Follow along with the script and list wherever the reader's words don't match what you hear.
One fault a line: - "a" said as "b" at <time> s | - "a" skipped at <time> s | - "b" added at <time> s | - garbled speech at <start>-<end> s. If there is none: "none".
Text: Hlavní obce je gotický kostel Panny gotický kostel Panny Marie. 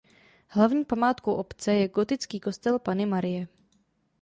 - "památkou" added at 0.8 s
- "gotický kostel Panny" skipped at 3.0 s